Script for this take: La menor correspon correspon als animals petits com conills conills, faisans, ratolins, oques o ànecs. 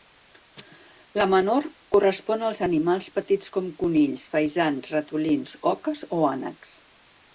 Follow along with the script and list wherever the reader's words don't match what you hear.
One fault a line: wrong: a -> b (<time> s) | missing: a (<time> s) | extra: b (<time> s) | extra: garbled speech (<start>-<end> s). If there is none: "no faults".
missing: correspon (2.5 s)
missing: conills (4.2 s)